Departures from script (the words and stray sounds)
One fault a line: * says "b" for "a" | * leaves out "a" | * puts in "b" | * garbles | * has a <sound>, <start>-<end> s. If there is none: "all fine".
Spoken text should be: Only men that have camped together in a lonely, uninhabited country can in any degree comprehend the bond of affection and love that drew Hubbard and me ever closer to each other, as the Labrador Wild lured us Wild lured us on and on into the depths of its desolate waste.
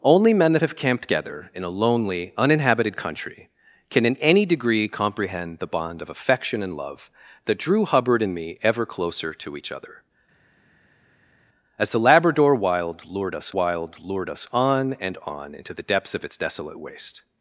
all fine